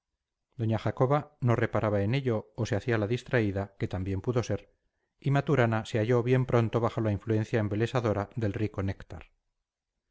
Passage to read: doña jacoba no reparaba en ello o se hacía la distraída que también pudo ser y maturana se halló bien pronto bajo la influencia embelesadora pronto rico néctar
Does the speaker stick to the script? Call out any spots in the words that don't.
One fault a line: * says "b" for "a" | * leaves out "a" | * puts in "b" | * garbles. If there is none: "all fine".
* says "del" for "pronto"